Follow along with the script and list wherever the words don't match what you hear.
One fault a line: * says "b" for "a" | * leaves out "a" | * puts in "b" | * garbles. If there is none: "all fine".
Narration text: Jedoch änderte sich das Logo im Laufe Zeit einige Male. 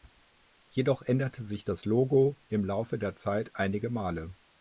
* puts in "der"